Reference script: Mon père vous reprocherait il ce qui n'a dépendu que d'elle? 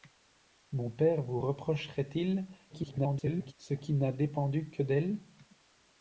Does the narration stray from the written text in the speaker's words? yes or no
yes